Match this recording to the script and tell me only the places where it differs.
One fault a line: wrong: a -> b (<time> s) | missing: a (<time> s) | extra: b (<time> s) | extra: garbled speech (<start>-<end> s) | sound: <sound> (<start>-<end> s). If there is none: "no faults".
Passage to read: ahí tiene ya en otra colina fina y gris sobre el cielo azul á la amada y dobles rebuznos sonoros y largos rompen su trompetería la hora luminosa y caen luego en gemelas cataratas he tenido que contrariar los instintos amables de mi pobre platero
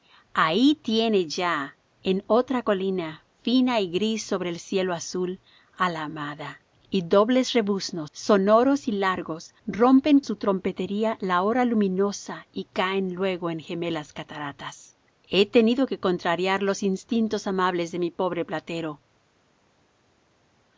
no faults